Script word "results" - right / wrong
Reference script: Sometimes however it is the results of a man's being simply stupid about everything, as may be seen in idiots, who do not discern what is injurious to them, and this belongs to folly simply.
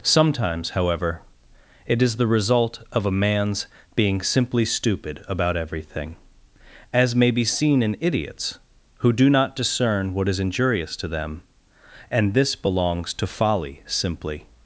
wrong